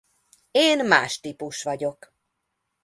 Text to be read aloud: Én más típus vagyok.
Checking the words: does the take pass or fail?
pass